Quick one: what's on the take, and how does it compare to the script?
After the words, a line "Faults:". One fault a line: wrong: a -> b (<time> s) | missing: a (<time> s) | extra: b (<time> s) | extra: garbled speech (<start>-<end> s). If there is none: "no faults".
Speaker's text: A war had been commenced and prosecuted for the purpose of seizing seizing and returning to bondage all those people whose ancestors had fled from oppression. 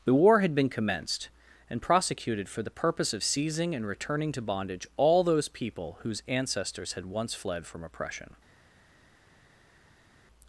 The war had been commenced and prosecuted for the purpose of seizing and returning to bondage all those people whose ancestors had once fled from oppression.
Faults:
wrong: A -> The (0.0 s)
missing: seizing (3.8 s)
extra: once (7.0 s)